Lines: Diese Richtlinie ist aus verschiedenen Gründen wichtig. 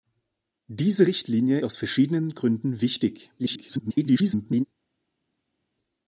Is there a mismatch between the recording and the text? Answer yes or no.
yes